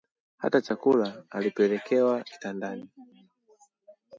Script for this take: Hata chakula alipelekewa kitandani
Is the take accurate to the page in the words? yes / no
yes